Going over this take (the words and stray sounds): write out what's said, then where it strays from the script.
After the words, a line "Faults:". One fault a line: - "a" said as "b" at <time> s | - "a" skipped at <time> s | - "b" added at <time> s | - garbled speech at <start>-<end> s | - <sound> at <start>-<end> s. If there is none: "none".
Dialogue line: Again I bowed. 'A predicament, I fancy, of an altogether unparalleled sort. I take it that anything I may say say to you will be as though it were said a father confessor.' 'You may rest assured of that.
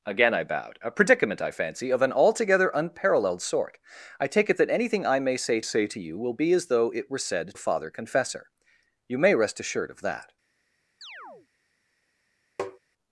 Again I bowed. 'A predicament, I fancy, of an altogether unparalleled sort. I take it that anything I may say say to you will be as though it were said a father confessor.' 'You may rest assured of that.
Faults:
- chirp at 11.0-11.5 s
- tap at 12.6-12.8 s